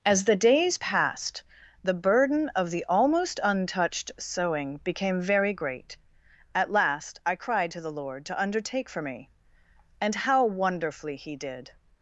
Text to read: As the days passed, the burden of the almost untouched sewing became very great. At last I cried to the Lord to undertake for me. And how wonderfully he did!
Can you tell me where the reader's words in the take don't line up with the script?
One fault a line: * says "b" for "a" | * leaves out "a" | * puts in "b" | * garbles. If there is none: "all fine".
all fine